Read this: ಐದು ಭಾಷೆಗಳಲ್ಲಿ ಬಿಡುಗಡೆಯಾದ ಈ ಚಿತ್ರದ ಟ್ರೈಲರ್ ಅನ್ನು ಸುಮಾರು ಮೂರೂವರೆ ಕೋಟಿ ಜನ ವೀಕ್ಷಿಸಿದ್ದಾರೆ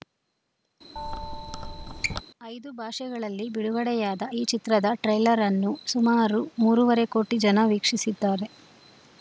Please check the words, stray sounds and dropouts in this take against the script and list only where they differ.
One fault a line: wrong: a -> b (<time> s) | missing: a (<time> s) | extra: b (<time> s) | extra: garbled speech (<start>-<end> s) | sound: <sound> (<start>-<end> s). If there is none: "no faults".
sound: squeak (1.0-2.2 s)